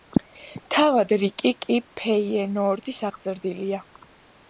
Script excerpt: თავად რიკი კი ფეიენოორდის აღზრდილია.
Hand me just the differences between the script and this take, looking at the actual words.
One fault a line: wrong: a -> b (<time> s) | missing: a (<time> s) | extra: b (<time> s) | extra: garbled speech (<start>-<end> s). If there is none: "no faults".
no faults